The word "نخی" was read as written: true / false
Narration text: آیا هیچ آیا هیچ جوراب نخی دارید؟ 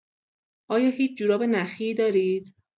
true